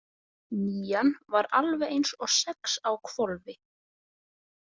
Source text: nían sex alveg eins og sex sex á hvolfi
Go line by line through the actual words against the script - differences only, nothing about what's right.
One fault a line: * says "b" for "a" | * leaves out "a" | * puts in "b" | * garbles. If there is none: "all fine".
* says "var" for "sex"
* leaves out "sex"